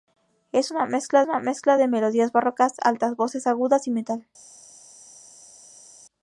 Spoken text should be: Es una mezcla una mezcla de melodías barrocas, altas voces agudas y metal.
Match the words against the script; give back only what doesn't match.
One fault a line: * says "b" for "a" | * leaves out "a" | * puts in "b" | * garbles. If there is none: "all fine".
all fine